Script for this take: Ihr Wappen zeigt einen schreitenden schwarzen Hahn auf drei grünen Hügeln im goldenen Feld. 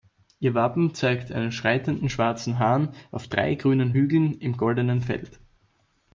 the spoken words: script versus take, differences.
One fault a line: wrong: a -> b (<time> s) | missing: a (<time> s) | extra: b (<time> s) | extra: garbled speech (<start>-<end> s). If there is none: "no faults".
no faults